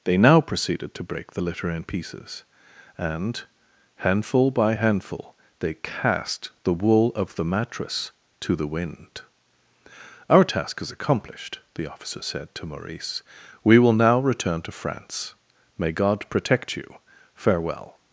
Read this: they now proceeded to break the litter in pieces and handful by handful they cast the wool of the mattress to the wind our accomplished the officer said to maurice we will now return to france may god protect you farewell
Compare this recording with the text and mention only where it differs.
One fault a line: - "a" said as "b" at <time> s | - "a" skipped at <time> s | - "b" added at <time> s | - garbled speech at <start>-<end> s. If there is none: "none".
- "task is" added at 10.4 s